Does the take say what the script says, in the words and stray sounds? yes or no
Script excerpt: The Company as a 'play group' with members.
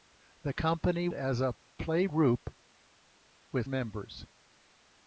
yes